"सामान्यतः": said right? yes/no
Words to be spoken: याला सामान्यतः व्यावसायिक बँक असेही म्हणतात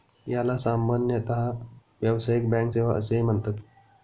yes